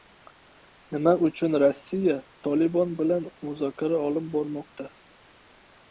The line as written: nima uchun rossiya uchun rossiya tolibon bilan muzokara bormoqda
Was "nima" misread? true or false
false